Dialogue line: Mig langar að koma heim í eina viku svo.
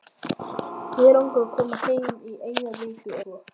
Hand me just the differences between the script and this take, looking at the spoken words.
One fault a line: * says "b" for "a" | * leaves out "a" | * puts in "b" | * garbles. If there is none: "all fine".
all fine